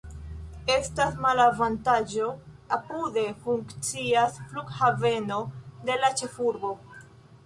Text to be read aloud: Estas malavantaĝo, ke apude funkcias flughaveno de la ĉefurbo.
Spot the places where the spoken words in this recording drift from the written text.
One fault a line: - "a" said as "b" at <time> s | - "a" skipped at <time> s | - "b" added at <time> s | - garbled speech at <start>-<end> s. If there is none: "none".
- "ke" skipped at 2.3 s